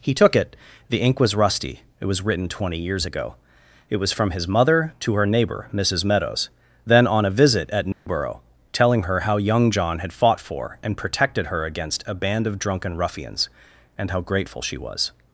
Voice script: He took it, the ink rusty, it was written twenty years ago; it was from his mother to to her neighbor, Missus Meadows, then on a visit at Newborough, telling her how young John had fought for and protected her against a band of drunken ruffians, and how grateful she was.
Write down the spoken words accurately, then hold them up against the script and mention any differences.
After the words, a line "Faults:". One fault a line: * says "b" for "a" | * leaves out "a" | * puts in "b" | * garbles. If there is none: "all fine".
He took it, the ink was rusty, it was written twenty years ago; it was from his mother to her neighbor, Missus Meadows, then on a visit at Newborough, telling her how young John had fought for and protected her against a band of drunken ruffians, and how grateful she was.
Faults:
* puts in "was"
* leaves out "to"